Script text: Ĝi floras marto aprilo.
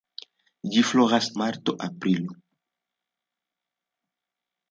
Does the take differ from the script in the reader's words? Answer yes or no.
no